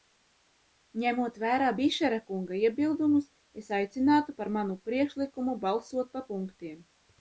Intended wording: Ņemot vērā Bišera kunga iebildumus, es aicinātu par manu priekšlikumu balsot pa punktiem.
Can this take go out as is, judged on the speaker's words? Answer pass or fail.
pass